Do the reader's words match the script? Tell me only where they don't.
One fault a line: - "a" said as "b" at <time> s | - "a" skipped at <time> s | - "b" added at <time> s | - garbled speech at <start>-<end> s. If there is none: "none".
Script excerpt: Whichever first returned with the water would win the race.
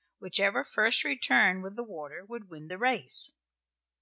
none